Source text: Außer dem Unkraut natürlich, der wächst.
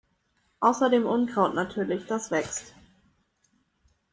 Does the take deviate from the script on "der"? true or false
true